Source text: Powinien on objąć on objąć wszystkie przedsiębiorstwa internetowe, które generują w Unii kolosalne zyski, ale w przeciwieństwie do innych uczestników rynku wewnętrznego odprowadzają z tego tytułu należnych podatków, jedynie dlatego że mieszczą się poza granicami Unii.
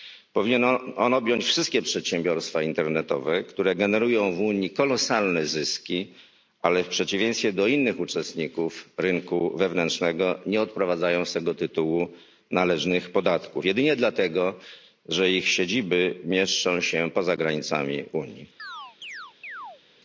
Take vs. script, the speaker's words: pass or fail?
fail